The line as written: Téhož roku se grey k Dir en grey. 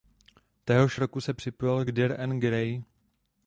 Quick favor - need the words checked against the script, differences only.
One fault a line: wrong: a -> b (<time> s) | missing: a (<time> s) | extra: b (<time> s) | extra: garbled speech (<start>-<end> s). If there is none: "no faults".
wrong: grey -> připojil (1.3 s)